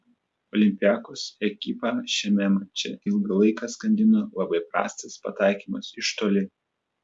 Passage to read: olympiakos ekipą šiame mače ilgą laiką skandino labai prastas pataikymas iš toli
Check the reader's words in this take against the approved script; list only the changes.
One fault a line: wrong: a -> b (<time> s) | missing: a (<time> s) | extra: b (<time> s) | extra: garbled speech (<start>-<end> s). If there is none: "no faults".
no faults